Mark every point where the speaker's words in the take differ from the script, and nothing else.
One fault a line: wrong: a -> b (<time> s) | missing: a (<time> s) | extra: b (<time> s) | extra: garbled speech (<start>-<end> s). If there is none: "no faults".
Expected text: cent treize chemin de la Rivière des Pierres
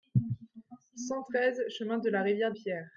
missing: des (2.5 s)